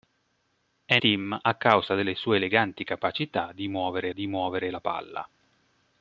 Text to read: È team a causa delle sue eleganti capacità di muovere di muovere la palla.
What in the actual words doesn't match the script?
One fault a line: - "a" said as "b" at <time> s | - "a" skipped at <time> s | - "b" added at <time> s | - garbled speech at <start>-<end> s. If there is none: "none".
none